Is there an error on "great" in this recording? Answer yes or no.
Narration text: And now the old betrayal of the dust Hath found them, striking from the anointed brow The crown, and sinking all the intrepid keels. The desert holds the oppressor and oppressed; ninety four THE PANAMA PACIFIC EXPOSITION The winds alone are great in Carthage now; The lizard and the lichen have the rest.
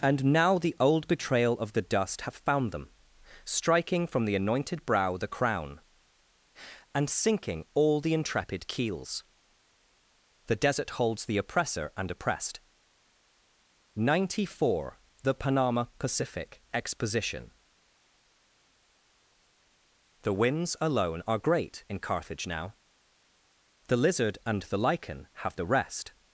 no